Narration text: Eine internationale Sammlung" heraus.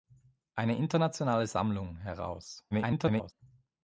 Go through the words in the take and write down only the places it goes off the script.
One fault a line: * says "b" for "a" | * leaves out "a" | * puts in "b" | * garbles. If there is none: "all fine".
* garbles